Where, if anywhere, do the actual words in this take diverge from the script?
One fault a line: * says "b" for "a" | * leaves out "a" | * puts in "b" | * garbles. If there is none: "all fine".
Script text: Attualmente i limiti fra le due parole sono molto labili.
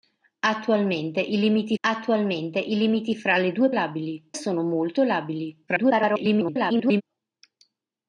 * puts in "attualmente i limiti"
* says "labili" for "parole"
* garbles